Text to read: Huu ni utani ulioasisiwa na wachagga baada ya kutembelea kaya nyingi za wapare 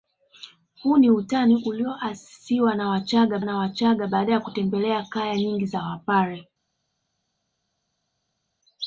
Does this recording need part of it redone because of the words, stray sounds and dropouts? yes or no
yes